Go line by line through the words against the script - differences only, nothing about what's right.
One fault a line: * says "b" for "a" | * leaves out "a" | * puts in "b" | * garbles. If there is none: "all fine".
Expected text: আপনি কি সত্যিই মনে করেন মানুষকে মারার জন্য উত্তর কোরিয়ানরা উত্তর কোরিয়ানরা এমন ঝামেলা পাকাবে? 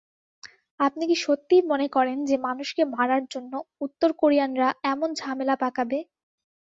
* puts in "যে"
* leaves out "উত্তর কোরিয়ানরা"